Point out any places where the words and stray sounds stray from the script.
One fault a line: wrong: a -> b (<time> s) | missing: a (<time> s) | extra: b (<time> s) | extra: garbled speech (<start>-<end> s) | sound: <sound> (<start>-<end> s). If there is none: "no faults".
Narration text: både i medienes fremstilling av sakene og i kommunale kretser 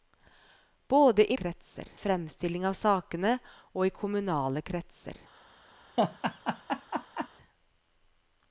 wrong: medienes -> kretser (1.4 s)
sound: laugh (6.0-7.3 s)